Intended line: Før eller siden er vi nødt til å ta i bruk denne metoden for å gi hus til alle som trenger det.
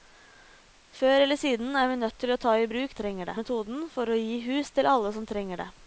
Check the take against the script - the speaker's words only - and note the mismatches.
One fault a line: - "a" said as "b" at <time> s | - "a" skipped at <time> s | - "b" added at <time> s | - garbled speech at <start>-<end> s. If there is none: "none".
- "denne" said as "trenger" at 3.0 s